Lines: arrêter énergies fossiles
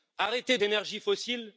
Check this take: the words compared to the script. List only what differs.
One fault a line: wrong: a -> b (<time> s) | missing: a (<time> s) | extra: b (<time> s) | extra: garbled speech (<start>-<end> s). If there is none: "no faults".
no faults